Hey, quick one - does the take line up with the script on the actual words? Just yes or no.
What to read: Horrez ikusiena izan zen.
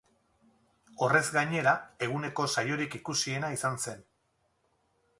no